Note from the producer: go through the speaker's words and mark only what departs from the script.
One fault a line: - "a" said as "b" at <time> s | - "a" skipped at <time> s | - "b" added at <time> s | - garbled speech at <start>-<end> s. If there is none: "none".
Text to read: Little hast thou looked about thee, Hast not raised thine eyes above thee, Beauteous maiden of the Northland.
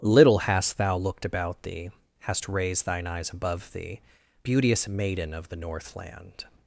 - "not" skipped at 2.5 s